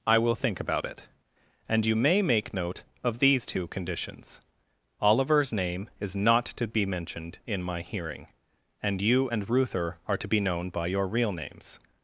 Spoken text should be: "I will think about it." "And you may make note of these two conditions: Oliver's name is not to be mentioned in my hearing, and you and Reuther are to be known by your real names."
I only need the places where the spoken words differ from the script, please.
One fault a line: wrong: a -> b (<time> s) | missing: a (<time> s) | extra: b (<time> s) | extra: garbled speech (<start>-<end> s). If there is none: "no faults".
no faults